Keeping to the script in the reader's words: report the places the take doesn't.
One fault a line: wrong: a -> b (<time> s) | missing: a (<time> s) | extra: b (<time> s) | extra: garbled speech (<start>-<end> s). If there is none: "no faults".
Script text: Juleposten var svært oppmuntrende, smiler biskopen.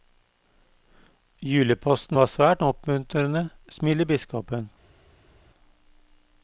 no faults